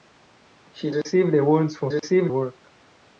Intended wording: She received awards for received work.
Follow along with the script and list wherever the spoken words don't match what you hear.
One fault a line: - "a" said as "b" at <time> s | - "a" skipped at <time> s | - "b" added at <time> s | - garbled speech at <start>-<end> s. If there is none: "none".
none